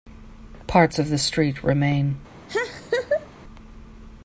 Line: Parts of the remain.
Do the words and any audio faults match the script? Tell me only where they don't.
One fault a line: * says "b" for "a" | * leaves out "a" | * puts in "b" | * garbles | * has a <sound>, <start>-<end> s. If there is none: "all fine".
* puts in "street"
* has a laugh, 2.5-3.3 s